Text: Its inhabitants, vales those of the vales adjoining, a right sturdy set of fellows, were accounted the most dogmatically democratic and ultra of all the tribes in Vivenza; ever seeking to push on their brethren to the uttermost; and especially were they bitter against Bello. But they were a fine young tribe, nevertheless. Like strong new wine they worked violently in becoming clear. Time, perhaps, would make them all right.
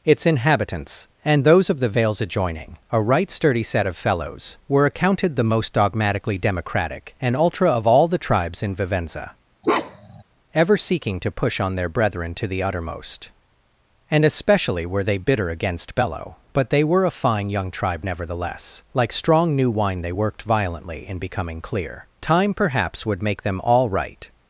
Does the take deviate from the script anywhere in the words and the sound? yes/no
yes